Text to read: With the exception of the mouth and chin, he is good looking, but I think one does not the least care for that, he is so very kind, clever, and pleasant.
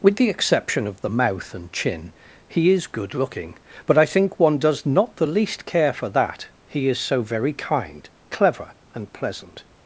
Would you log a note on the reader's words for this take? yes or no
no